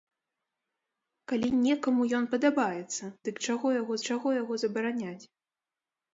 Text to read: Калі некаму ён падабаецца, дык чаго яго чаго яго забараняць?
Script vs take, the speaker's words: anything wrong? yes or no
no